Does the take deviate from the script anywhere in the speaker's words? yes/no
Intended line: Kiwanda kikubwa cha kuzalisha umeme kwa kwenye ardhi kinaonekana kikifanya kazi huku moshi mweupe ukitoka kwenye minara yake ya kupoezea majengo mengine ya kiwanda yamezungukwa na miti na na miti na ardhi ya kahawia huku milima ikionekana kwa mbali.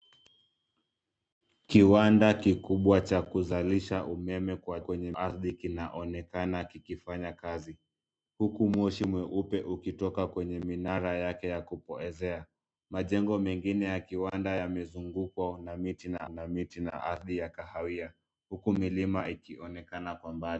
no